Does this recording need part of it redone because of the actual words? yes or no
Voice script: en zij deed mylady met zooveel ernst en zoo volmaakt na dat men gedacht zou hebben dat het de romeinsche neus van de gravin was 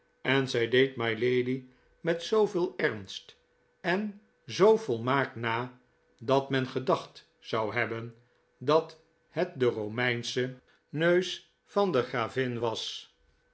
no